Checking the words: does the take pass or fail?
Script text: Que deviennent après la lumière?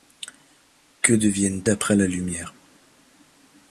pass